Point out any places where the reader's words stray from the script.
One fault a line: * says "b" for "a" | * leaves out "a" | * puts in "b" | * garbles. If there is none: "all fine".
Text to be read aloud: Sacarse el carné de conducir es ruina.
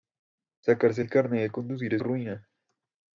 all fine